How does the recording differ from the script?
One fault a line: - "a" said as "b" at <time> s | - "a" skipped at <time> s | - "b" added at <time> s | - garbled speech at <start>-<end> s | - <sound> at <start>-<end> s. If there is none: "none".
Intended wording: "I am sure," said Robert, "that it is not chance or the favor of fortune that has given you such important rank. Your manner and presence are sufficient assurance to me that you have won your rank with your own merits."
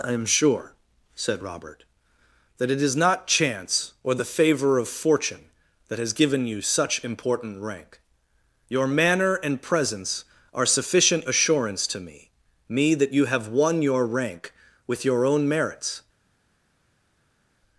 - "me" added at 12.7 s